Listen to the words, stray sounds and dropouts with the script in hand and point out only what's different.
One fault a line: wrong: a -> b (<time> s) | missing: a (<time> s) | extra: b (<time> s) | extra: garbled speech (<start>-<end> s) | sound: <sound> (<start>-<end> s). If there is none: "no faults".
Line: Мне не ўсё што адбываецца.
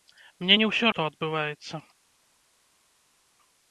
no faults